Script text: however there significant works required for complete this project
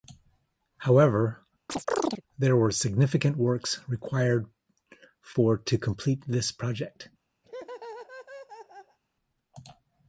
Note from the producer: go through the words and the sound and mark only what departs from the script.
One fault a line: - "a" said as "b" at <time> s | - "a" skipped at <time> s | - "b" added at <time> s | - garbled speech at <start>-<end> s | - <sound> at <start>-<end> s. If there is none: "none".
- chirp at 1.7-2.2 s
- "were" added at 2.5 s
- "to" added at 5.6 s
- laugh at 7.4-9.0 s